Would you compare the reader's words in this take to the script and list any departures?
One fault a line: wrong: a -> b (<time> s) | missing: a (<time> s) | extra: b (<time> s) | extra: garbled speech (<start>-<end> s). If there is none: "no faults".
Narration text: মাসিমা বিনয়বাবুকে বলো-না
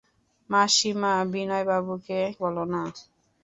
no faults